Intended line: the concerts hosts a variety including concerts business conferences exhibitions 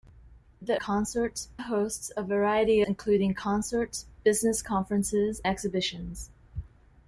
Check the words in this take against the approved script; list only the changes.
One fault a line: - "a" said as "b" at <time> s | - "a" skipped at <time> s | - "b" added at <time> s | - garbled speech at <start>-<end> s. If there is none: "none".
none